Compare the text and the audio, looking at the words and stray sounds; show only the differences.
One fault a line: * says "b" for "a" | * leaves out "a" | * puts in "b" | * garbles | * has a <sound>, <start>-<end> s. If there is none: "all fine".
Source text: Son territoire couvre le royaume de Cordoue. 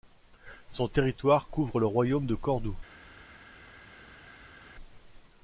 all fine